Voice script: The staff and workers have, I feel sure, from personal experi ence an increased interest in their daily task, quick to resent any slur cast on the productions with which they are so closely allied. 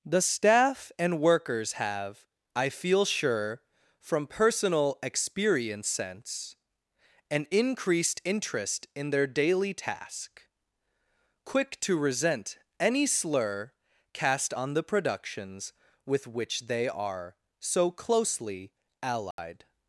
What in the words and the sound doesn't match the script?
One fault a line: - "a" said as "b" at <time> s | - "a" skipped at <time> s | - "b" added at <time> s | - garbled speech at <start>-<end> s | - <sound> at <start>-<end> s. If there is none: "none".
- "experi ence" said as "experience sense" at 5.0 s
- dropout at 19.3-19.4 s